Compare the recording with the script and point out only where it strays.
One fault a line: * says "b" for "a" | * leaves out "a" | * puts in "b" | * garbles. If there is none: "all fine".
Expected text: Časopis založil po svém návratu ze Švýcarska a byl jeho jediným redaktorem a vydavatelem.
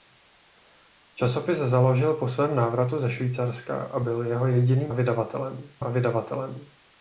* says "vydavatelem" for "redaktorem"